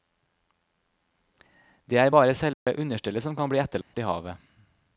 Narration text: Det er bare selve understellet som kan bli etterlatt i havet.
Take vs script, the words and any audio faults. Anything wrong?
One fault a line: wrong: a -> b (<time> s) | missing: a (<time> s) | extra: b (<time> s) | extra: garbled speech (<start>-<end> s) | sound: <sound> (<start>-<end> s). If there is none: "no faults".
sound: dropout (2.5-2.7 s)
sound: dropout (3.8-3.9 s)